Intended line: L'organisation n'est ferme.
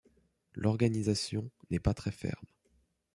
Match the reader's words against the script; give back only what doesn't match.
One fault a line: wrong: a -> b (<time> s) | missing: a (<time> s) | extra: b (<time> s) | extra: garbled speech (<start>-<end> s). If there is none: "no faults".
extra: pas très (1.8 s)